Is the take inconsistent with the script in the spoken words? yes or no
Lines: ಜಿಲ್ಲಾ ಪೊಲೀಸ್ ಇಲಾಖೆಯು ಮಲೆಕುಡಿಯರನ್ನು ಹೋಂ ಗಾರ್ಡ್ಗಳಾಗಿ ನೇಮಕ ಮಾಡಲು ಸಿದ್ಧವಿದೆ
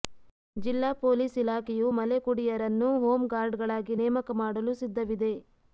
no